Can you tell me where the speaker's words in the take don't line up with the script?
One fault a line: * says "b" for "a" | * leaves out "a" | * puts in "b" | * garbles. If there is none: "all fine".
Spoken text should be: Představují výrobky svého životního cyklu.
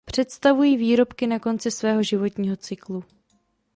* puts in "na konci"